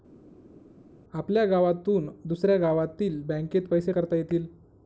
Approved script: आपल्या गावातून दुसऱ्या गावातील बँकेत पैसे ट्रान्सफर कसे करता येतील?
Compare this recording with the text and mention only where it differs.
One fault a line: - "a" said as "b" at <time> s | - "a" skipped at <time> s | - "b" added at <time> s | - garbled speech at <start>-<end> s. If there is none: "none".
- "ट्रान्सफर कसे" skipped at 3.9 s